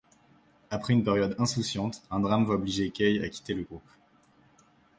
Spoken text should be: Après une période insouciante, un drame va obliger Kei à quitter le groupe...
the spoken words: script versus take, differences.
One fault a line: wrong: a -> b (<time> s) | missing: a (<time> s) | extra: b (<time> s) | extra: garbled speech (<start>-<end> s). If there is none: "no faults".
no faults